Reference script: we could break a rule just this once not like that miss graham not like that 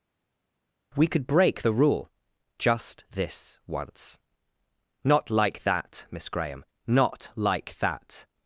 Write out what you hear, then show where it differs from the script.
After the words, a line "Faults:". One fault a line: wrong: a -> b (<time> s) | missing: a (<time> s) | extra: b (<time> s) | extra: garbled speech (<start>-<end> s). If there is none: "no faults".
we could break the rule just this once not like that miss graham not like that
Faults:
wrong: a -> the (1.6 s)